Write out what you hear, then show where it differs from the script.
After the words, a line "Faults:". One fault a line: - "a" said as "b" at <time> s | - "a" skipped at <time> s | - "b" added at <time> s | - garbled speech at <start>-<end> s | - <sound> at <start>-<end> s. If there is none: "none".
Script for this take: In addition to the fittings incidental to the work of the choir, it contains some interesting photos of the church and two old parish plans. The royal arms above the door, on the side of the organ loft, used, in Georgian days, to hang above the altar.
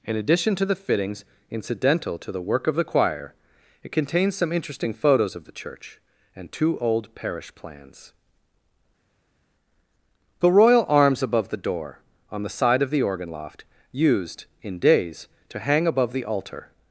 In addition to the fittings incidental to the work of the choir, it contains some interesting photos of the church and two old parish plans. The royal arms above the door, on the side of the organ loft, used, in days, to hang above the altar.
Faults:
- "Georgian" skipped at 14.8 s